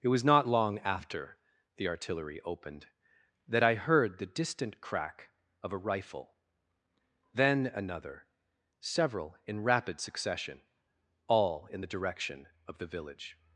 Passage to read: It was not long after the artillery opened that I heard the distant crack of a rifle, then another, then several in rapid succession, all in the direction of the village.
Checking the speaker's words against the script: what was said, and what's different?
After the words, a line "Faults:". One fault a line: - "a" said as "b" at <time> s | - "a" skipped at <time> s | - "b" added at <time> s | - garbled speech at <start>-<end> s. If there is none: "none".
It was not long after the artillery opened that I heard the distant crack of a rifle, then another, several in rapid succession, all in the direction of the village.
Faults:
- "then" skipped at 8.3 s